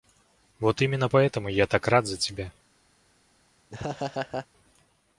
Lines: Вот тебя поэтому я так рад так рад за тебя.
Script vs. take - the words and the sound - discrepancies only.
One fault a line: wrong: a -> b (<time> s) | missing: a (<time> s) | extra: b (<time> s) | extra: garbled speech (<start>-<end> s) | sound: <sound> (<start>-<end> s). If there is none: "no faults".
wrong: тебя -> именно (0.8 s)
missing: так рад (2.1 s)
sound: laugh (3.7-4.5 s)